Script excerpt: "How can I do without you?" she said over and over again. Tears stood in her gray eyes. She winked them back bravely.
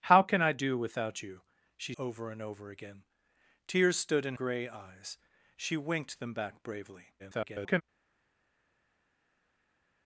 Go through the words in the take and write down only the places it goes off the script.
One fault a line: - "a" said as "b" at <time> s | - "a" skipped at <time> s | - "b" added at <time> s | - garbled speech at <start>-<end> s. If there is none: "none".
- "said" skipped at 1.9 s
- "her" skipped at 4.3 s
- garbled speech at 7.2-7.8 s